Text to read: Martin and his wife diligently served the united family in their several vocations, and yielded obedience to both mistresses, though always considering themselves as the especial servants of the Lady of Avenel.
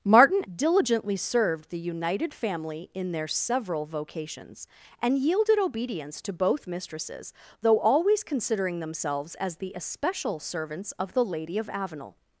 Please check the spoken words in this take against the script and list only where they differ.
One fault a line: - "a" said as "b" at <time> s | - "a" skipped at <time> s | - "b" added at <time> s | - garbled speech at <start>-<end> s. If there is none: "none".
- "and his wife" skipped at 0.4 s